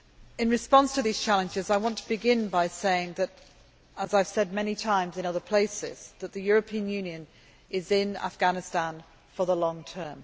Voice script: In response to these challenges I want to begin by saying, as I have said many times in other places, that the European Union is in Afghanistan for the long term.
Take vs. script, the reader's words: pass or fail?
pass